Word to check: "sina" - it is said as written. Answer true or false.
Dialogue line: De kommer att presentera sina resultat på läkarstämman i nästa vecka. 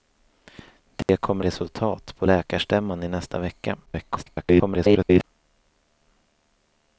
false